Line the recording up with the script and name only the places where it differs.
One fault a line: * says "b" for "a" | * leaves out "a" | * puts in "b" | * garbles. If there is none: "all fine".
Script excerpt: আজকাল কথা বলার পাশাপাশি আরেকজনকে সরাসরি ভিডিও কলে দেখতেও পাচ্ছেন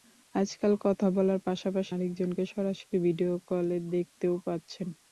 all fine